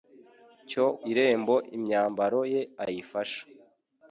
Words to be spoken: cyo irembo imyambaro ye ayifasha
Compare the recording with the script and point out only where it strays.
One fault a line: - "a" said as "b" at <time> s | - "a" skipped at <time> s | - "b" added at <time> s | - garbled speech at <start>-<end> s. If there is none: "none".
none